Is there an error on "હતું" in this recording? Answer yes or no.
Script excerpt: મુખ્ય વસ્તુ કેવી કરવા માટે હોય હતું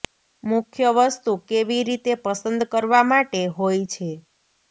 yes